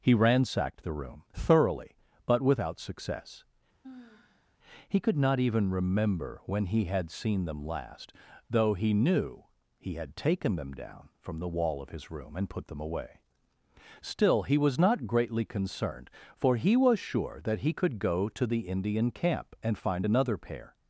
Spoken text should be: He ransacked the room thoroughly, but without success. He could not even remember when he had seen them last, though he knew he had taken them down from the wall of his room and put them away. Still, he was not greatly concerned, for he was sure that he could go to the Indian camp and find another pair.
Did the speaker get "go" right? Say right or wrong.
right